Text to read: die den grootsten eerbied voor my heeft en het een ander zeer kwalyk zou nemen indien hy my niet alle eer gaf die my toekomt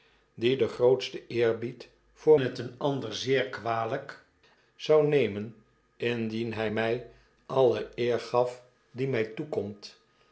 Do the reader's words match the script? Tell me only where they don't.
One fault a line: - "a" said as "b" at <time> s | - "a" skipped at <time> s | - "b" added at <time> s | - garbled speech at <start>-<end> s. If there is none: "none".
- "my heeft en" skipped at 2.4 s
- "niet" skipped at 7.1 s